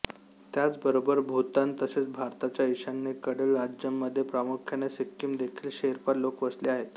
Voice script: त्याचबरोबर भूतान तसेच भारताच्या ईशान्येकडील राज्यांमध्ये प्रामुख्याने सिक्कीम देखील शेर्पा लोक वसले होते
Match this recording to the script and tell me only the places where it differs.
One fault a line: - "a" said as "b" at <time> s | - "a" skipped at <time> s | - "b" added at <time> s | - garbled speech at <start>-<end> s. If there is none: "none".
- "होते" said as "आहेत" at 6.7 s